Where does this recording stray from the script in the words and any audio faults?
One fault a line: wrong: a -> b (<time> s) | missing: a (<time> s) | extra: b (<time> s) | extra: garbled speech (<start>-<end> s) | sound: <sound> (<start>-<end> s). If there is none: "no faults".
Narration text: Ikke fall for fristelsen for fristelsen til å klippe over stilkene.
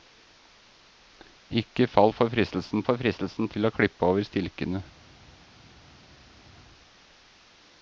no faults